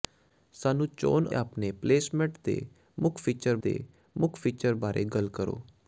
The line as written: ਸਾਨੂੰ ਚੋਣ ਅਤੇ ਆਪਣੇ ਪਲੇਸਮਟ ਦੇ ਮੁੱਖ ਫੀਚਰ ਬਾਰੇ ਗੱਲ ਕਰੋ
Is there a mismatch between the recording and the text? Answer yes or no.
yes